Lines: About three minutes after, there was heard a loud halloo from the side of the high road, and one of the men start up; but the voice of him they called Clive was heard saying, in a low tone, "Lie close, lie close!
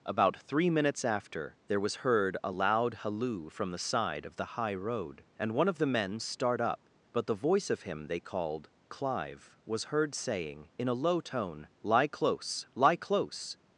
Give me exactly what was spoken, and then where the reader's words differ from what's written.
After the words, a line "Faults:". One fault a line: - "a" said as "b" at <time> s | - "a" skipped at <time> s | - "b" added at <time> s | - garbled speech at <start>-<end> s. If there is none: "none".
About three minutes after, there was heard a loud halloo from the side of the high road, and one of the men start up; but the voice of him they called Clive was heard saying, in a low tone, "Lie close, lie close!
Faults:
none